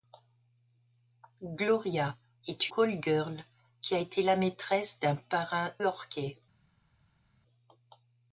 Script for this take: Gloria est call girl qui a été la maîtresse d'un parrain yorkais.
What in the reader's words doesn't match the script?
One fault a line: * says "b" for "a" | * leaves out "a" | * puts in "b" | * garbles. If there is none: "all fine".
all fine